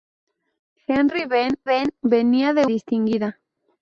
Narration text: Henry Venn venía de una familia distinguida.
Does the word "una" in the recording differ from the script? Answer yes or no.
yes